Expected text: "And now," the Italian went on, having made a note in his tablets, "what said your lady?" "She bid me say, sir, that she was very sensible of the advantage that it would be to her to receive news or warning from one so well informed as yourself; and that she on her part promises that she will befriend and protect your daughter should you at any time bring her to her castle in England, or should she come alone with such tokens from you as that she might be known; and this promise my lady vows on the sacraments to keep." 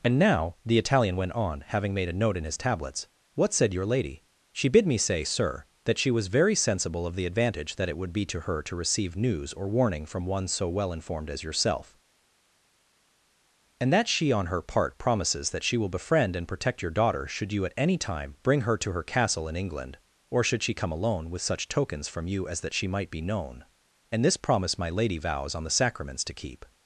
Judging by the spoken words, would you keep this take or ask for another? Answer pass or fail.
pass